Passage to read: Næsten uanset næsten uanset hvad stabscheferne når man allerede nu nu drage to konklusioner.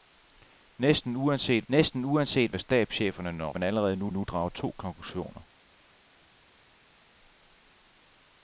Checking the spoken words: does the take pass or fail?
pass